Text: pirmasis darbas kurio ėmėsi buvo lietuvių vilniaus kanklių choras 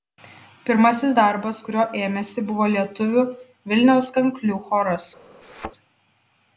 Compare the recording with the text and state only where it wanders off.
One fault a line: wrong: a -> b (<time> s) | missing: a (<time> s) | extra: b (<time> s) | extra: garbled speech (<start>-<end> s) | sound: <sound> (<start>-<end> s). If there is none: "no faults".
sound: thud (5.4-5.7 s)